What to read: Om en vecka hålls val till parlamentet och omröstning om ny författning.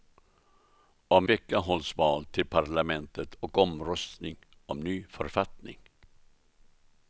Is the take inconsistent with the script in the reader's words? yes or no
yes